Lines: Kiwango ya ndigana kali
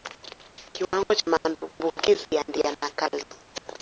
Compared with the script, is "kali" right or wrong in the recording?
right